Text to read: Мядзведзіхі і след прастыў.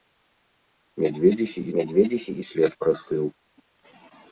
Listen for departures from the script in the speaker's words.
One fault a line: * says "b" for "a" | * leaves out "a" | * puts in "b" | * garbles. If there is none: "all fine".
* puts in "мядзведзіхі"